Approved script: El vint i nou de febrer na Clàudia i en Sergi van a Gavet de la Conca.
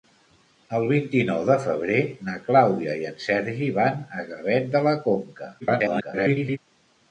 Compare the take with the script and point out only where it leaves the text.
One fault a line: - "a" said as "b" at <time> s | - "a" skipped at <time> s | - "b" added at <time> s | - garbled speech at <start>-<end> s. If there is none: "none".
- garbled speech at 5.6-6.6 s